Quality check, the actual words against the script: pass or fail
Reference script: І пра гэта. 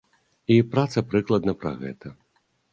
fail